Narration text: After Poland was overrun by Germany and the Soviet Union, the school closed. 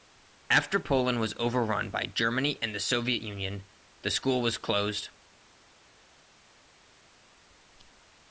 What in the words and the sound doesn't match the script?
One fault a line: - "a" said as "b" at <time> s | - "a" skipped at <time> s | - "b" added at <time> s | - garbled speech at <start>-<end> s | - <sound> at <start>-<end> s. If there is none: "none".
- "was" added at 4.4 s